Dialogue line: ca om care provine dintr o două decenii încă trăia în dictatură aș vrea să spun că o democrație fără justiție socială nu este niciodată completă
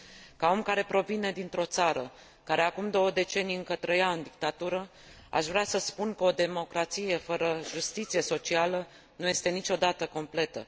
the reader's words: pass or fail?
fail